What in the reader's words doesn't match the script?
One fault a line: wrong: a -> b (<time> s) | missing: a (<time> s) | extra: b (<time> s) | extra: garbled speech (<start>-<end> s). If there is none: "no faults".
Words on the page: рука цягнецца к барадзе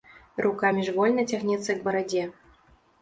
extra: міжвольна (0.8 s)